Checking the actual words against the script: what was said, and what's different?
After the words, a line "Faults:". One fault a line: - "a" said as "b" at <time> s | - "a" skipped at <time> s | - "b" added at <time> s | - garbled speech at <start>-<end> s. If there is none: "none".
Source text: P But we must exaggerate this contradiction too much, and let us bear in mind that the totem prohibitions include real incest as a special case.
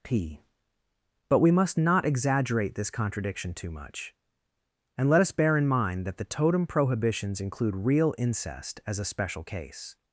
P But we must not exaggerate this contradiction too much, and let us bear in mind that the totem prohibitions include real incest as a special case.
Faults:
- "not" added at 1.8 s